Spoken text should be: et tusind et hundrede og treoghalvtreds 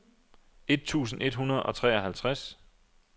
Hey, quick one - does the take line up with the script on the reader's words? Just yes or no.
yes